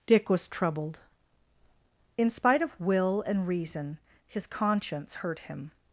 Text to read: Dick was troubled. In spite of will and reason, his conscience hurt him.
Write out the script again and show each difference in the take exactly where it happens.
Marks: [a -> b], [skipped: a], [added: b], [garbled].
Dick was troubled. In spite of will and reason, his conscience hurt him.